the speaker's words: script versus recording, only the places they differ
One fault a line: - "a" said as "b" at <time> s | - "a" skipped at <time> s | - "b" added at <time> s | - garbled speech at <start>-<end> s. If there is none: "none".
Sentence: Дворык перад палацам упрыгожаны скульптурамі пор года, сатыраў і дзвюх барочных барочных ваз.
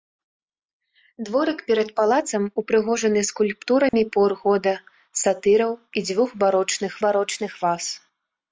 none